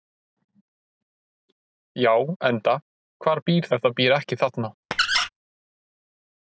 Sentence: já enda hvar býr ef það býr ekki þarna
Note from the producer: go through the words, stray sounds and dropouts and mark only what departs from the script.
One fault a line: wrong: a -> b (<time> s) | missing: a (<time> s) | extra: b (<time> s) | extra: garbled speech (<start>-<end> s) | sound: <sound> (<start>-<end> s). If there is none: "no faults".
sound: squeak (4.9-5.3 s)